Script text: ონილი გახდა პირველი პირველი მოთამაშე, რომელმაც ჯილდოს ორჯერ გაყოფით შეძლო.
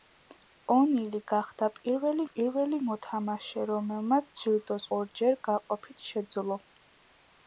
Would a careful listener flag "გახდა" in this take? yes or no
no